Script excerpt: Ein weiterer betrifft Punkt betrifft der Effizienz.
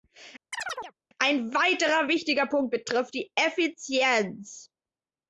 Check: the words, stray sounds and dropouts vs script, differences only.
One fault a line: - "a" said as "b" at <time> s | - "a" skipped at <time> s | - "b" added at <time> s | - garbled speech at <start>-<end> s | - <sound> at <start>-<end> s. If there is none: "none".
- chirp at 0.5-0.9 s
- "betrifft" said as "wichtiger" at 2.1 s
- "der" said as "die" at 3.1 s